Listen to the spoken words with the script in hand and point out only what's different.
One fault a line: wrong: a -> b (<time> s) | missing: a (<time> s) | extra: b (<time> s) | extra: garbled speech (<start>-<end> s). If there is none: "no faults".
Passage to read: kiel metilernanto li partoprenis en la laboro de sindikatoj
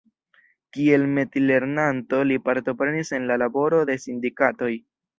no faults